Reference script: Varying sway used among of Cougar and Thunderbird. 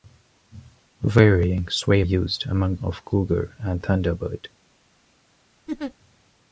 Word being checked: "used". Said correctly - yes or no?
yes